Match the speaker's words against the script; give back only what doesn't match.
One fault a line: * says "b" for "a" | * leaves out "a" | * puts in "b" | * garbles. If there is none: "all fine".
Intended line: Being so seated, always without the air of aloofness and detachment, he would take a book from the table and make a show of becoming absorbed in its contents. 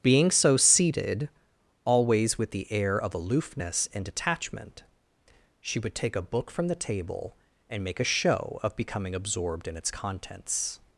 * says "with" for "without"
* says "she" for "he"